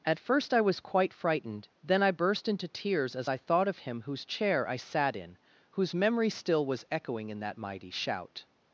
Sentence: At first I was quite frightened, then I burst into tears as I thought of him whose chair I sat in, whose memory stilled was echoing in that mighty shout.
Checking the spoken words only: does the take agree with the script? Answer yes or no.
no